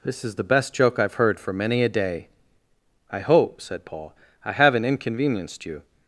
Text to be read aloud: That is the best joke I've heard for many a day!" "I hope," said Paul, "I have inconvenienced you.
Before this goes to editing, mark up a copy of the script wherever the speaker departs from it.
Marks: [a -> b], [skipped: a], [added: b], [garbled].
[That -> This] is the best joke I've heard for many a day!" "I hope," said Paul, "I [have -> haven't] inconvenienced you.